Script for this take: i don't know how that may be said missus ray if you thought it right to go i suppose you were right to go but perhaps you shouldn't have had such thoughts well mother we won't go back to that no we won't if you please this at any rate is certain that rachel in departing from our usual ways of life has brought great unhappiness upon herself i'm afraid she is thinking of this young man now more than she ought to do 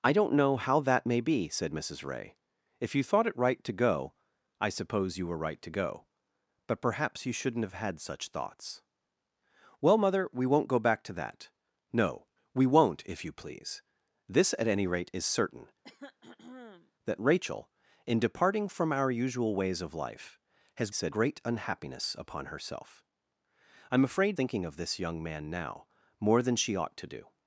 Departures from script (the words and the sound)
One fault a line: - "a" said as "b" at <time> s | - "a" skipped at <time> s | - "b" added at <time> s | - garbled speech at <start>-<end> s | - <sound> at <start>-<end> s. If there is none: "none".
- throat clearing at 15.8-16.9 s
- "brought" said as "said" at 20.9 s
- "she is" skipped at 24.4 s